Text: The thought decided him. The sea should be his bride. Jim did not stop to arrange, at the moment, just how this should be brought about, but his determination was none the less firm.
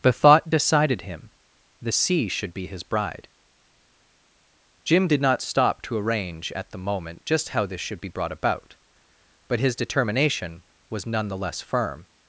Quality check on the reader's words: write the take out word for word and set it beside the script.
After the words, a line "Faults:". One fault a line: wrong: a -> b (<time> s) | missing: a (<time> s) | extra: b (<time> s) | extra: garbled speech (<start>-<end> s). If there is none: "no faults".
The thought decided him. The sea should be his bride. Jim did not stop to arrange, at the moment, just how this should be brought about, but his determination was none the less firm.
Faults:
no faults